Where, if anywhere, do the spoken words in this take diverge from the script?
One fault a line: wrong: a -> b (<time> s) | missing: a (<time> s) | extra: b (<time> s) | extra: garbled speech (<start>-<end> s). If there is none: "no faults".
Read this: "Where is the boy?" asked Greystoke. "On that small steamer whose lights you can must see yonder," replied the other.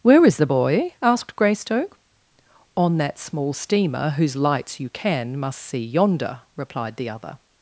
no faults